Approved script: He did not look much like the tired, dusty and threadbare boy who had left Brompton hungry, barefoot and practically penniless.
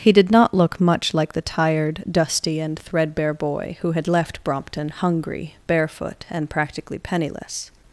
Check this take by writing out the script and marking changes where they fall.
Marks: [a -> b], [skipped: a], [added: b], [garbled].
He did not look much like the tired, dusty and threadbare boy who had left Brompton hungry, barefoot and practically penniless.